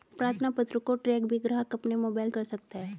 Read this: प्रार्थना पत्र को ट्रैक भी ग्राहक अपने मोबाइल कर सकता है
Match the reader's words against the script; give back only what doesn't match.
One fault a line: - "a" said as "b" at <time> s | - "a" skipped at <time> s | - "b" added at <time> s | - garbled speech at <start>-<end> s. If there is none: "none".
none